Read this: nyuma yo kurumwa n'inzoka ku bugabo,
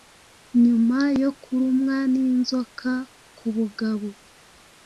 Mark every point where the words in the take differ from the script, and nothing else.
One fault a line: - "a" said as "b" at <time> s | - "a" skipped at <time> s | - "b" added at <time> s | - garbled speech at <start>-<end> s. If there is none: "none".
none